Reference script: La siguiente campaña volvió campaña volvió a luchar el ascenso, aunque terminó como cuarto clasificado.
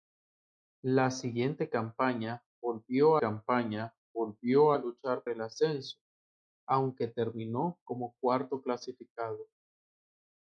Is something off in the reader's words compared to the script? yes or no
no